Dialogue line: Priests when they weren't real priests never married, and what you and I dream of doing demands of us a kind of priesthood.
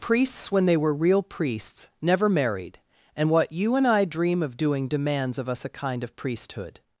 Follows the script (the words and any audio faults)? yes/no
no